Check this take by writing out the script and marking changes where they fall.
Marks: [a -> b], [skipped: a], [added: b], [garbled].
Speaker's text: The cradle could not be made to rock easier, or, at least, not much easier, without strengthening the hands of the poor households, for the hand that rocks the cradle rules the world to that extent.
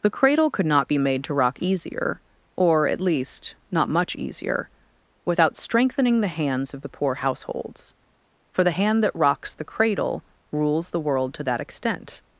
The cradle could not be made to rock easier, or, at least, not much easier, without strengthening the hands of the poor households, for the hand that rocks the cradle rules the world to that extent.